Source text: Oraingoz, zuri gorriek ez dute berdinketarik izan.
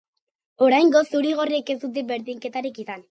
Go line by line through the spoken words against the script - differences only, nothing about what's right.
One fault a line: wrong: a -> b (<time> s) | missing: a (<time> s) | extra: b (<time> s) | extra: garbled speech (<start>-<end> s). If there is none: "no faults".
no faults